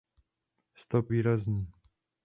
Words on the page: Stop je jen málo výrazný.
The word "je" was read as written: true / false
false